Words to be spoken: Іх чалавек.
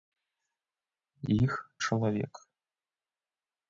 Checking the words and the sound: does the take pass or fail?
pass